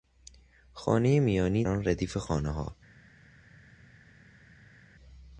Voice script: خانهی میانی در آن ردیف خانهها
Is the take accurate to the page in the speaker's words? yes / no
no